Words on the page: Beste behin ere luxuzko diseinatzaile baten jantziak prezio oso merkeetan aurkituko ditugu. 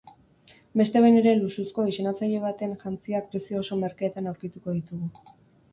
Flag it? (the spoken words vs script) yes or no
no